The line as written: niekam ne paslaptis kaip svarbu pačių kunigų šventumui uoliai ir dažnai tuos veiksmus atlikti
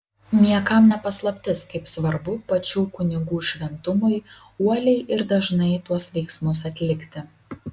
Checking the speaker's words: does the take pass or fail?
pass